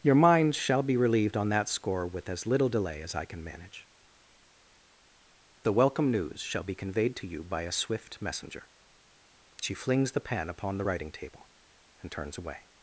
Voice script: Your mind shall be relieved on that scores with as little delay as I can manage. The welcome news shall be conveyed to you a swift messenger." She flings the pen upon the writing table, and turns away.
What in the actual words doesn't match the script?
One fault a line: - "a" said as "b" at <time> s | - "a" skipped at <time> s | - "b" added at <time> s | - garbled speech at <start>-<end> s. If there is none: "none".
- "scores" said as "score" at 1.7 s
- "by" added at 7.4 s